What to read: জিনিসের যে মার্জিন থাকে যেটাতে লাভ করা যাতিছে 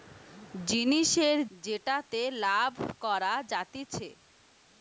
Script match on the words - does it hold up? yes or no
no